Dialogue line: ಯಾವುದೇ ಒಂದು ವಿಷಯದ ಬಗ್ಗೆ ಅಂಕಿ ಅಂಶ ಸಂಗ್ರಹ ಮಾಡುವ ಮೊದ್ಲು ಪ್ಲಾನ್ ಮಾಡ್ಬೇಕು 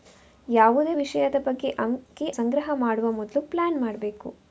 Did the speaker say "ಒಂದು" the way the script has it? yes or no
no